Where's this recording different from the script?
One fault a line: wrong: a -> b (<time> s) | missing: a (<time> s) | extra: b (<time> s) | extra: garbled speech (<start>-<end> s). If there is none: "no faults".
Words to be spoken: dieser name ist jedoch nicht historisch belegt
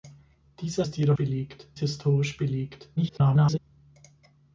missing: name (0.9 s)
wrong: nicht -> belegt (1.2 s)
extra: garbled speech (3.0-3.6 s)